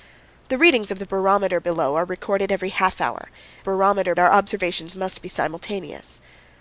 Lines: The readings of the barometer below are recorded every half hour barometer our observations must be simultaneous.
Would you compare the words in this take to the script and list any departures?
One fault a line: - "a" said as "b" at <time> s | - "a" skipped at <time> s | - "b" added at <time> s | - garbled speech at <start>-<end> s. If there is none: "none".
none